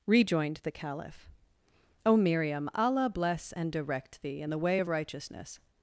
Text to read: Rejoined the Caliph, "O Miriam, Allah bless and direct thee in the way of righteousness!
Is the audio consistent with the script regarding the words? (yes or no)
yes